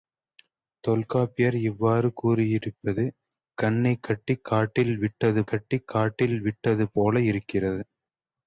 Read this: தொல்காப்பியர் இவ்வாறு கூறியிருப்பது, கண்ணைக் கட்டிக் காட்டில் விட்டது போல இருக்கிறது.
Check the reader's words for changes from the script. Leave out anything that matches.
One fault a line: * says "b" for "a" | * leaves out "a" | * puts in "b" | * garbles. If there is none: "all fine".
* puts in "கட்டிக் காட்டில் விட்டது"